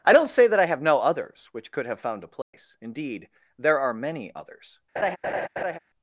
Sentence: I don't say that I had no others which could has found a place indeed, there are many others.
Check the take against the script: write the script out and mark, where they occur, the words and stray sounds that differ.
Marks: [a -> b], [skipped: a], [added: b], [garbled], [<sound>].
I don't say that I [had -> have] no others which could [has -> have] found a place [dropout] indeed, there are many others. [laugh]